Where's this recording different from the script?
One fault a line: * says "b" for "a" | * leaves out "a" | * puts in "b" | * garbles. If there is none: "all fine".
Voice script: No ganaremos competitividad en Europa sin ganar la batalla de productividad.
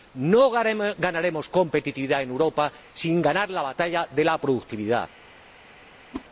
* puts in "la"